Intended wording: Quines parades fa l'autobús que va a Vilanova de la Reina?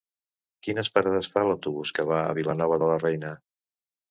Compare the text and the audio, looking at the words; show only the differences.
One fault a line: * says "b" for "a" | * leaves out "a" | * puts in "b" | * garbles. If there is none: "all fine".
all fine